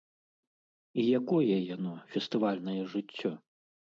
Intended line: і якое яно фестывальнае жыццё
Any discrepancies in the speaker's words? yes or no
no